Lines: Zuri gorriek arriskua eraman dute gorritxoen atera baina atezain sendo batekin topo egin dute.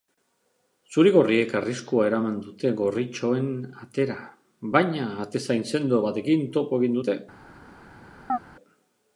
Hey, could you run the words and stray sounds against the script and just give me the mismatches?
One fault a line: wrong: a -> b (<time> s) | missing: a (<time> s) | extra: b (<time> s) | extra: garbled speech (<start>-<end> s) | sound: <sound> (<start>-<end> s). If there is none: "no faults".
sound: chirp (8.3-8.4 s)